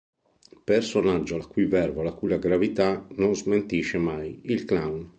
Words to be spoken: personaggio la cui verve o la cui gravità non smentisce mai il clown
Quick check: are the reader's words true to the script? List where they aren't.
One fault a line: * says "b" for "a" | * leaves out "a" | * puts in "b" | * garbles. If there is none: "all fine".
all fine